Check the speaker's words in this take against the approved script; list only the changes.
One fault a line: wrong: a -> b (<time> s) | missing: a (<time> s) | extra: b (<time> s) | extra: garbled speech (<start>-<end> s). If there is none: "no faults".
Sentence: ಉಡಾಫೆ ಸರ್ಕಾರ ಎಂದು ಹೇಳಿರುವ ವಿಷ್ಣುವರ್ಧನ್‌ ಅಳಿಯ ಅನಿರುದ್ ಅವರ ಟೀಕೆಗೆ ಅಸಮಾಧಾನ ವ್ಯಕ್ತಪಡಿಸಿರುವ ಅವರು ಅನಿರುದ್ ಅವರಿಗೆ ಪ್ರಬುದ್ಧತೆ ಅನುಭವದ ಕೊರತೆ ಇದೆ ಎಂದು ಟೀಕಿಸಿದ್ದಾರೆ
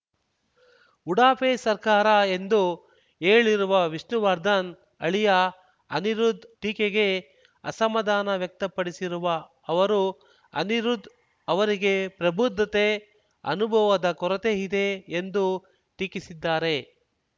missing: ಅವರ (6.5 s)